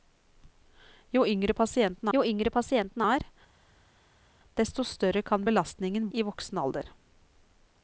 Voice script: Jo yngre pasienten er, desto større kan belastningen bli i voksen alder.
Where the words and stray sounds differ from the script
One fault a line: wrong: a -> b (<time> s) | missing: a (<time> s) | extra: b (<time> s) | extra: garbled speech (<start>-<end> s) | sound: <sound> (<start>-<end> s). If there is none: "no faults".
extra: jo yngre pasienten (2.1 s)
missing: bli (6.1 s)